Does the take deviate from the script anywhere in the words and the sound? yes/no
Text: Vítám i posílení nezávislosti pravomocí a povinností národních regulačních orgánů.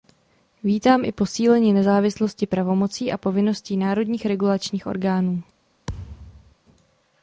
yes